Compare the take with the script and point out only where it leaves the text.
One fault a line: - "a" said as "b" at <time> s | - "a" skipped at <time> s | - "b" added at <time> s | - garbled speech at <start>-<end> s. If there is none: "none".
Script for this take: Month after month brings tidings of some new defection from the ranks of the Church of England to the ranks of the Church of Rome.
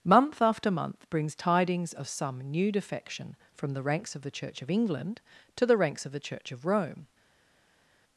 none